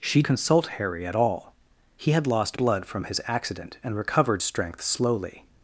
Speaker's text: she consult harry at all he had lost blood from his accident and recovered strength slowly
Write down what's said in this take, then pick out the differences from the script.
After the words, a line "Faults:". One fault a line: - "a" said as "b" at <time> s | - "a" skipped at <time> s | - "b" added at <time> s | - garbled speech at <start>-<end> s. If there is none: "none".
she consult harry at all he had lost blood from his accident and recovered strength slowly
Faults:
none